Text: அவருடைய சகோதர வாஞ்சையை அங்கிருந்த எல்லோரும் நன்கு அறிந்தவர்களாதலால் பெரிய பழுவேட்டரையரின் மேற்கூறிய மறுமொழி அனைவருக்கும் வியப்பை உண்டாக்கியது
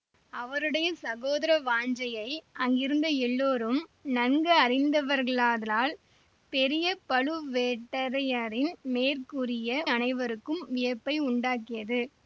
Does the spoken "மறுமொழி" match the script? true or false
false